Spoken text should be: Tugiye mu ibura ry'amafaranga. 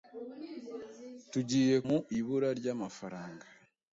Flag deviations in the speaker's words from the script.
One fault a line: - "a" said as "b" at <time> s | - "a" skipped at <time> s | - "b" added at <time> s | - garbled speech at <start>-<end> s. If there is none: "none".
none